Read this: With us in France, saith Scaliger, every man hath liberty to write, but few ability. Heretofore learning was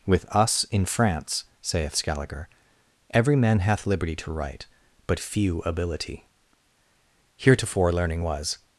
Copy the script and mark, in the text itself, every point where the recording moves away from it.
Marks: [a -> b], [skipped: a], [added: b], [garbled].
With us in France, saith Scaliger, every man hath liberty to write, but few ability. Heretofore learning was